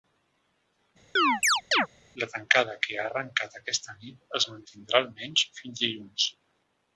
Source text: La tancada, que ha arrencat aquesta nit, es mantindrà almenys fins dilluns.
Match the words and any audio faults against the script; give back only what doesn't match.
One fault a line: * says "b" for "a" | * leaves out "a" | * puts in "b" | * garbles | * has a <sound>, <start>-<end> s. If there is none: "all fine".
* has a chirp, 1.2-1.9 s